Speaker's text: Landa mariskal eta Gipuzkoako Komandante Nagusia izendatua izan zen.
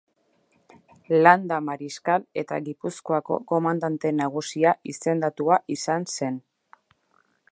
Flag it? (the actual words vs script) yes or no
no